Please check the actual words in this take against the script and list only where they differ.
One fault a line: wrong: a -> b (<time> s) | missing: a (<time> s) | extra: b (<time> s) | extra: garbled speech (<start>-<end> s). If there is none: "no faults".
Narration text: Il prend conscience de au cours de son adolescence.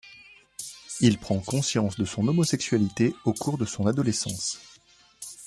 extra: son homosexualité (2.1 s)